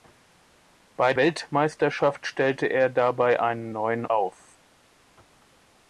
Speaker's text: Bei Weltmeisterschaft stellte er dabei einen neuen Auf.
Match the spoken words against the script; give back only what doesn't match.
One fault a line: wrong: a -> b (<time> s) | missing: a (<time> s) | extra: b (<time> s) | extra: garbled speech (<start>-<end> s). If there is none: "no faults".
no faults